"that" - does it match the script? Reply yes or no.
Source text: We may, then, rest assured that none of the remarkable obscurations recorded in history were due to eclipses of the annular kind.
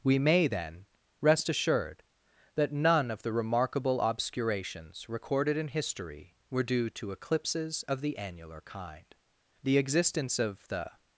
yes